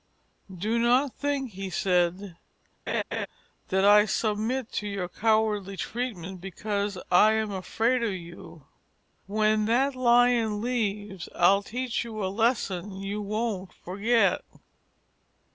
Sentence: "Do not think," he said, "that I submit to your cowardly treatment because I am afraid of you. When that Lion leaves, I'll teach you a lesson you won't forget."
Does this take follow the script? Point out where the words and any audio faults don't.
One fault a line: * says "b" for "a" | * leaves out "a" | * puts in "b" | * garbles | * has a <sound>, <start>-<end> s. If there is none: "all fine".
* has a laugh, 2.9-3.3 s